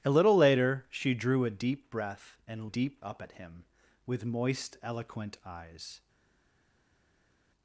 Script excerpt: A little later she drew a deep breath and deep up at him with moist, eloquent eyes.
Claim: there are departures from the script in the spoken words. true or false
false